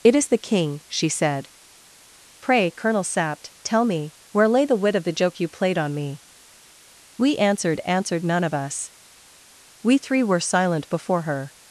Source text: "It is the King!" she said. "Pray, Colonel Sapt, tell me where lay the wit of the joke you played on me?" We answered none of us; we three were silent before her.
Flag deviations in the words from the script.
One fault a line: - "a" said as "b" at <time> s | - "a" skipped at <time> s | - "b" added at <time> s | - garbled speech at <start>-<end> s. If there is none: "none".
- "answered" added at 7.8 s